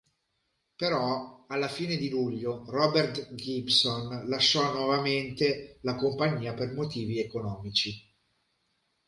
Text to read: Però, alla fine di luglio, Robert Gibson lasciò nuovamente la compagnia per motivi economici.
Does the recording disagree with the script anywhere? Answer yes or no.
no